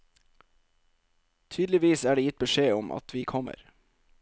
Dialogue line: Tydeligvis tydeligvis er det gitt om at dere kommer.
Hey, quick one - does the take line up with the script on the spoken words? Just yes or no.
no